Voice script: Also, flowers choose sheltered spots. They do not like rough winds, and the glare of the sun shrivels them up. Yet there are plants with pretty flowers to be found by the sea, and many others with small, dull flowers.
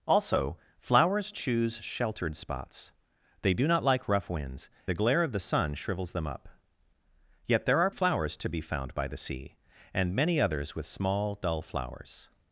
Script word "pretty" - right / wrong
wrong